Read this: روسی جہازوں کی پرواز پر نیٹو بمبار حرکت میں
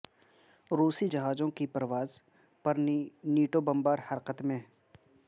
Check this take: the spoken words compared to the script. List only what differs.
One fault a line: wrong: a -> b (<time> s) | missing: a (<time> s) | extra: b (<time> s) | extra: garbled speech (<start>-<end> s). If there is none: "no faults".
no faults